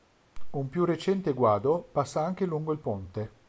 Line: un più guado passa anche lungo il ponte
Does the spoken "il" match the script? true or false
true